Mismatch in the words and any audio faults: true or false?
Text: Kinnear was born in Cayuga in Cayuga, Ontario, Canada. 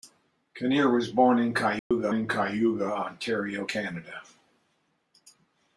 true